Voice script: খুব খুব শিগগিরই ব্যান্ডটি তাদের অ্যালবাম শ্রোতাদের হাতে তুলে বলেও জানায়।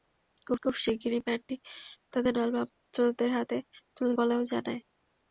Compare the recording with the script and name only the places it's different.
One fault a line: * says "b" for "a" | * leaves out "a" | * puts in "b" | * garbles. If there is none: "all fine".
all fine